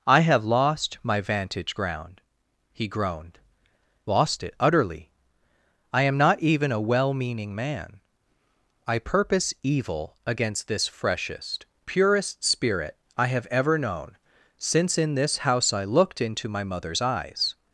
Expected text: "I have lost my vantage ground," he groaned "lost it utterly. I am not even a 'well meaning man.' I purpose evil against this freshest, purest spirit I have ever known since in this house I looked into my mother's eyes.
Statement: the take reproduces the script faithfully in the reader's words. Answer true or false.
true